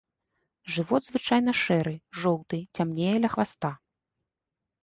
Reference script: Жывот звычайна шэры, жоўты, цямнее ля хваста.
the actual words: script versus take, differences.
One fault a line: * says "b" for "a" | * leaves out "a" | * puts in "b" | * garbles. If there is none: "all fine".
all fine